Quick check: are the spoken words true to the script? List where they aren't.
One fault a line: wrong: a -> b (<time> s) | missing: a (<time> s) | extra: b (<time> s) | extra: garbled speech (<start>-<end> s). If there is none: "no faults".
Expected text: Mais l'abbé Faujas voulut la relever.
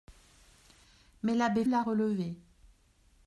missing: Faujas voulut (1.6 s)